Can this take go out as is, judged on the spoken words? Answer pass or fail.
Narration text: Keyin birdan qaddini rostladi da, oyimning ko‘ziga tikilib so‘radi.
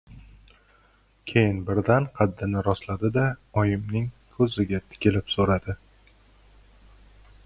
pass